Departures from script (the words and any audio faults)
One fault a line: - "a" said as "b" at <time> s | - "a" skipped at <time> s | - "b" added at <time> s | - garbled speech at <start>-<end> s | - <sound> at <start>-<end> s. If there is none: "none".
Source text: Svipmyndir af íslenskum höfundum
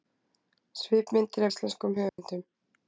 - "af" skipped at 1.4 s
- dropout at 2.1-2.2 s